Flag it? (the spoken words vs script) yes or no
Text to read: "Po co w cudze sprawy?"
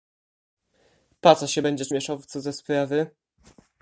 yes